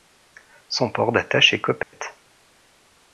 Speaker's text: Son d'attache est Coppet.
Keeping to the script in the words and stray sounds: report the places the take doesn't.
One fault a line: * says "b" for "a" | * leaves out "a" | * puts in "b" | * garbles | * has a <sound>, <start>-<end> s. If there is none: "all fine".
* puts in "port"
* has a dropout, 1.8-1.9 s